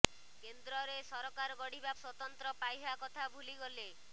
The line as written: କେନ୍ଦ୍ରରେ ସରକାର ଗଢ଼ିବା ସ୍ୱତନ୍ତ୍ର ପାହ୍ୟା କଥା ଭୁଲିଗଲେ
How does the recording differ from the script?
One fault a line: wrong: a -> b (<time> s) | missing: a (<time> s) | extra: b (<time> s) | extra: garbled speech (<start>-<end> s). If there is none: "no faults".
no faults